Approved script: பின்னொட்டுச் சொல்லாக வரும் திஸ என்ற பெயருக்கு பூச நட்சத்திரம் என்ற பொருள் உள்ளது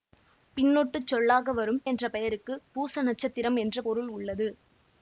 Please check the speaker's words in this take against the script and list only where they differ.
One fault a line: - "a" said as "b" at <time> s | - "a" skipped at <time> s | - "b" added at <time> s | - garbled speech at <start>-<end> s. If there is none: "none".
- "திஸ" skipped at 1.8 s